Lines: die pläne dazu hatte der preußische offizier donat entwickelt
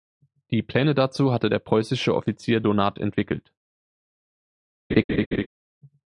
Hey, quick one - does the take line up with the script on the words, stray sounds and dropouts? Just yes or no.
no